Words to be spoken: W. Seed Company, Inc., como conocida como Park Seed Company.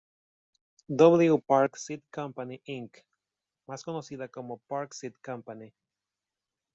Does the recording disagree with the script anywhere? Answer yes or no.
yes